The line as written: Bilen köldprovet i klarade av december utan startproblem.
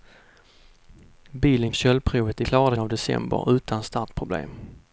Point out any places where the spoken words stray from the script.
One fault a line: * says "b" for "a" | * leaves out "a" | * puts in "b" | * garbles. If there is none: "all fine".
all fine